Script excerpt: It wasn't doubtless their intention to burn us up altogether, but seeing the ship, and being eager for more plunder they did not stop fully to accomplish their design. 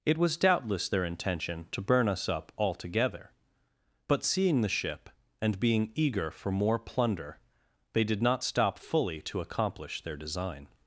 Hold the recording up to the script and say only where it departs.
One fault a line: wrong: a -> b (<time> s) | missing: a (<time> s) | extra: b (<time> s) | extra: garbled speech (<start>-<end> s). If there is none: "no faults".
wrong: wasn't -> was (0.2 s)